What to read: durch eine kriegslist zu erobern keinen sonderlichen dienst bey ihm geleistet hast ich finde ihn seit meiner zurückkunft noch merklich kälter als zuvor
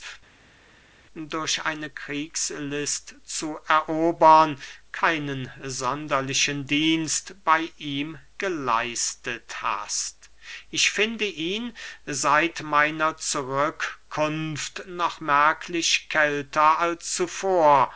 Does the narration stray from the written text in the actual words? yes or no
no